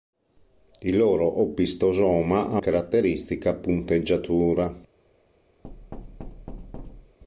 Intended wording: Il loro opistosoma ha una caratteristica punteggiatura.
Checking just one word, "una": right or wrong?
wrong